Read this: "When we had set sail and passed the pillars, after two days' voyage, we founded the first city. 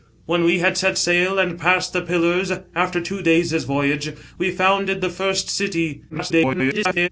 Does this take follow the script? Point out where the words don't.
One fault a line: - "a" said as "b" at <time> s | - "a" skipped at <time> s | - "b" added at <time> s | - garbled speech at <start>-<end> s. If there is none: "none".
- garbled speech at 6.1-7.1 s